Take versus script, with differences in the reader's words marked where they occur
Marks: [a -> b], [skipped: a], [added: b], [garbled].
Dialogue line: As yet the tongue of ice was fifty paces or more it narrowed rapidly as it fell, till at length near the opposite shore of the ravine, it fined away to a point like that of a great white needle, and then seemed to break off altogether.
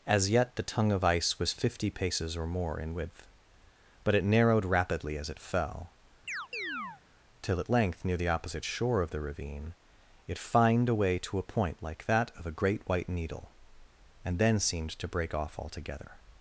As yet the tongue of ice was fifty paces or more [added: in width but] it narrowed rapidly as it fell, till at length near the opposite shore of the ravine, it fined away to a point like that of a great white needle, and then seemed to break off altogether.